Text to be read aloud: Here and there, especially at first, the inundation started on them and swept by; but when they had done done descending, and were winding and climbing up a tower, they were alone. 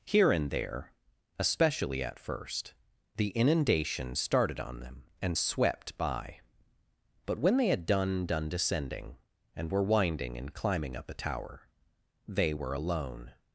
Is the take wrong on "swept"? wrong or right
right